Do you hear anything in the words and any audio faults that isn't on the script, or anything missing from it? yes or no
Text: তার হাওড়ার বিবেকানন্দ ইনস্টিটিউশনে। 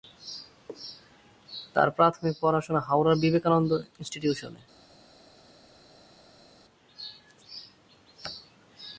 yes